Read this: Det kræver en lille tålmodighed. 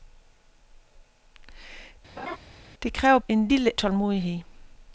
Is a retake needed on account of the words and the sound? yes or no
yes